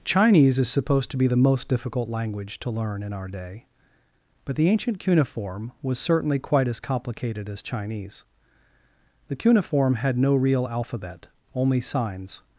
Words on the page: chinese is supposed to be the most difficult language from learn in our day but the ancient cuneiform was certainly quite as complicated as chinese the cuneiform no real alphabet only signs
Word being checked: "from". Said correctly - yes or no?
no